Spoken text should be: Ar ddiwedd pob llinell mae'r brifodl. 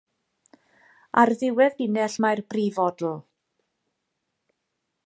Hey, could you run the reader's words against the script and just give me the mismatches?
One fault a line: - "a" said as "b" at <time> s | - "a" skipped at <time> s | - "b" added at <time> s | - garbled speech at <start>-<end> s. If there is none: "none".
- "pob" skipped at 1.8 s